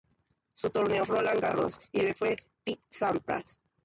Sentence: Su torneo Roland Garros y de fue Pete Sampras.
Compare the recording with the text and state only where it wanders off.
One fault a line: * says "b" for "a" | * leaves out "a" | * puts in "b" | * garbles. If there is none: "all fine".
all fine